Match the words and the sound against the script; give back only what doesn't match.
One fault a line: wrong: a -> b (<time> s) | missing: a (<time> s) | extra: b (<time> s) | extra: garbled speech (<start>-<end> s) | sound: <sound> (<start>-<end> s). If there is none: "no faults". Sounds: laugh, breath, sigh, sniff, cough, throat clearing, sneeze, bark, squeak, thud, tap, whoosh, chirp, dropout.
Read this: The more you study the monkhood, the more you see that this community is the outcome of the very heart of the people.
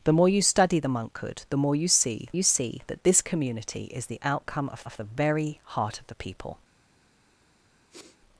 extra: you see (2.3 s)
extra: of (4.8 s)
sound: sniff (7.9-8.2 s)